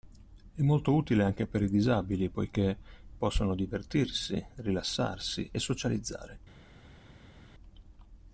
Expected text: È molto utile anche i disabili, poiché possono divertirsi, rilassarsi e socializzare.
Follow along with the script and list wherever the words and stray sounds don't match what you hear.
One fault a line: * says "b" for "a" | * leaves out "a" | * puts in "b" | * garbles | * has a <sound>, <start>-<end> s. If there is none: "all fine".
* puts in "per"